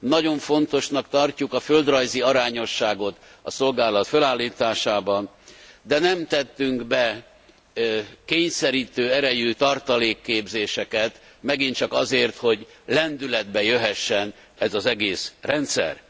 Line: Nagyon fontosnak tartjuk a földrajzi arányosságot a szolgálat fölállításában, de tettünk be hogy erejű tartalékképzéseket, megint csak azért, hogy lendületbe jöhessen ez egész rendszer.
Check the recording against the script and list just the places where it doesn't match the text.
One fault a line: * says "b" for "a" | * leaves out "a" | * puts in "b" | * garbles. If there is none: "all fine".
* puts in "nem"
* says "kényszerítő" for "hogy"
* puts in "az"